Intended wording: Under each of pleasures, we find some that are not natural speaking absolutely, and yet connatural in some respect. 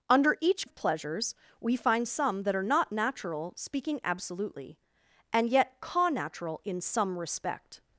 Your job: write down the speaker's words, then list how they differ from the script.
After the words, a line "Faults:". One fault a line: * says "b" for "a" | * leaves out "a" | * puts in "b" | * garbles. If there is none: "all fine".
Under each of pleasures, we find some that are not natural speaking absolutely, and yet connatural in some respect.
Faults:
all fine